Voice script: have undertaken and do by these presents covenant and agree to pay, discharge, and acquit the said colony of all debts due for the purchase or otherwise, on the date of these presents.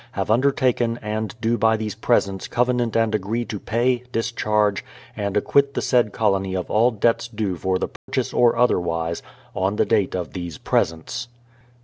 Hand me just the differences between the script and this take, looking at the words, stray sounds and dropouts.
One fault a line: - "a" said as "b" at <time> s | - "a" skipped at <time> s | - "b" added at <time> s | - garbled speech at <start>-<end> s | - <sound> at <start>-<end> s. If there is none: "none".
- dropout at 8.0-8.1 s